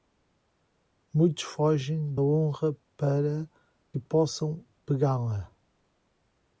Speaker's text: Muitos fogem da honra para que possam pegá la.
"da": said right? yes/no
no